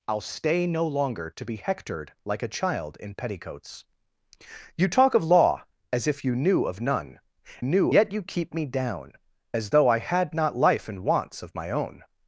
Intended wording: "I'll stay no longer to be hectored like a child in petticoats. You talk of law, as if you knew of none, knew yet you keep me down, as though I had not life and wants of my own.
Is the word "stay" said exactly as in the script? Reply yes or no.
yes